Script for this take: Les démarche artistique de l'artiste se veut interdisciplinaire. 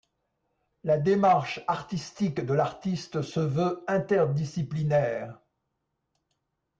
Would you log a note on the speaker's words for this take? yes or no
yes